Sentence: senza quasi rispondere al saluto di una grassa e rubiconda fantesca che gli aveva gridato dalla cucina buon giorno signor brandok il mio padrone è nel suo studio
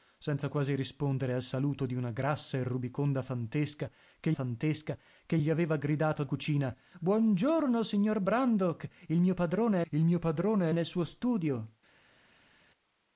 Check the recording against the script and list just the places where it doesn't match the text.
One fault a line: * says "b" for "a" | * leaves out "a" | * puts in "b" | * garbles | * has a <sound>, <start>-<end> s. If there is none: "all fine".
* puts in "fantesca che"
* leaves out "dalla"
* puts in "il mio padrone"